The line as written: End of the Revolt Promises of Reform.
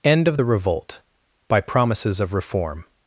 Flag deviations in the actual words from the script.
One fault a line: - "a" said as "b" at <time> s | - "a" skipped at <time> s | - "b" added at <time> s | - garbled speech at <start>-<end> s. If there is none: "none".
- "by" added at 1.5 s